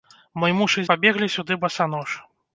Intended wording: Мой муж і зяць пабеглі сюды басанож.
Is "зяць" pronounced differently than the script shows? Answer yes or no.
yes